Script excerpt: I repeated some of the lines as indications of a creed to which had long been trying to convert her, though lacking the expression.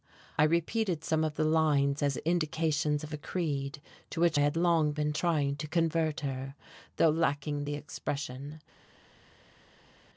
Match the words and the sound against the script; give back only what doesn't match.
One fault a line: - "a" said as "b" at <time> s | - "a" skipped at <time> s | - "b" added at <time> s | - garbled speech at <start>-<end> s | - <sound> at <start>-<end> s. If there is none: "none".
none